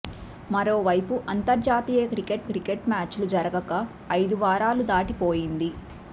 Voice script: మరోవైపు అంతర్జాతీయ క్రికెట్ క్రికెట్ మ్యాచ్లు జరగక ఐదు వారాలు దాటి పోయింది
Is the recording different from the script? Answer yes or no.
no